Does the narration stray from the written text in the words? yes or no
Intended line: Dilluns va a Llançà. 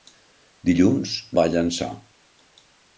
no